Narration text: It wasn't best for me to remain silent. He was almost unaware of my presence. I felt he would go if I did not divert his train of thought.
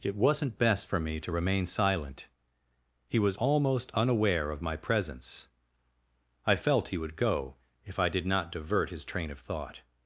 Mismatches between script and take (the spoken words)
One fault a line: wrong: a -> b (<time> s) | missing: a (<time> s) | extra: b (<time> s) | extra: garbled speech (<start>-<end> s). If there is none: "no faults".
no faults